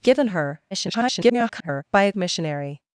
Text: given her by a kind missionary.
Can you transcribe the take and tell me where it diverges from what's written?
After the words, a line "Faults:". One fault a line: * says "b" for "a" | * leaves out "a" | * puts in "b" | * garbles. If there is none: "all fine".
given her [garbled] by a missionary.
Faults:
* garbles
* leaves out "kind"